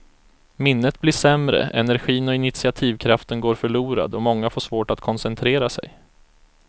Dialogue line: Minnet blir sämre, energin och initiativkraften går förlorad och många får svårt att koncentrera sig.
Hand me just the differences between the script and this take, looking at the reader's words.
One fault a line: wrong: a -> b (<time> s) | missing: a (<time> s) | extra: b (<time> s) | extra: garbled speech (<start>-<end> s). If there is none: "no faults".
no faults